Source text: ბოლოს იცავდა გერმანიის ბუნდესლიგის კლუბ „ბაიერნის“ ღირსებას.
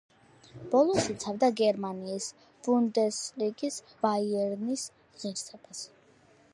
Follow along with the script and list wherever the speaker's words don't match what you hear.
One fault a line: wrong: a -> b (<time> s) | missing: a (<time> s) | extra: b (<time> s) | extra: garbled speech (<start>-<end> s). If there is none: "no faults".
missing: კლუბ (3.8 s)